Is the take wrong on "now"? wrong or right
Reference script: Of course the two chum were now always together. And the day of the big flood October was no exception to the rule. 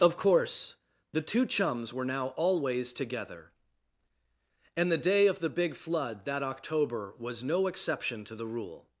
right